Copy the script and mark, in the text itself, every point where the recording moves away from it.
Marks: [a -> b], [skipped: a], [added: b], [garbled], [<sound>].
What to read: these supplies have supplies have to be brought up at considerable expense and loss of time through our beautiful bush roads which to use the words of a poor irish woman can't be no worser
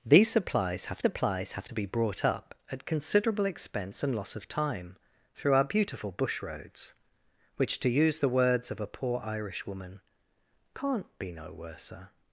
these supplies have supplies have to be brought up at considerable expense and loss of time through our beautiful bush roads which to use the words of a poor irish woman can't be no worser